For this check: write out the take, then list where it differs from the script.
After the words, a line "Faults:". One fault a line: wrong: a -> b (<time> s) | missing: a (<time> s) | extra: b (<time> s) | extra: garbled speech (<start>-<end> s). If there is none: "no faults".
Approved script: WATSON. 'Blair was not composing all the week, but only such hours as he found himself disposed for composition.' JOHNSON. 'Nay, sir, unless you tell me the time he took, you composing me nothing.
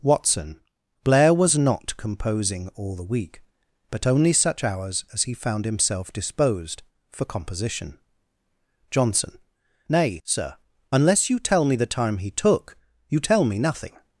WATSON. 'Blair was not composing all the week, but only such hours as he found himself disposed for composition.' JOHNSON. 'Nay, sir, unless you tell me the time he took, you tell me nothing.
Faults:
wrong: composing -> tell (13.2 s)